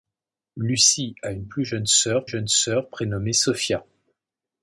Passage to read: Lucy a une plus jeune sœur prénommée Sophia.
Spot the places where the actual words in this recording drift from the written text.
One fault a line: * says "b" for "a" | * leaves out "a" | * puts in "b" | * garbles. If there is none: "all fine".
* puts in "jeune sœur"